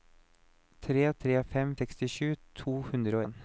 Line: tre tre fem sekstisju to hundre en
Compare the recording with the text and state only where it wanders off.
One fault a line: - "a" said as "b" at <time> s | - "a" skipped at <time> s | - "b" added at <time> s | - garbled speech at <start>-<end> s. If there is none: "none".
none